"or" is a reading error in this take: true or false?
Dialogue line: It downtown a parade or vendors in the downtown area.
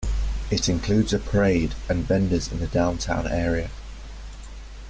true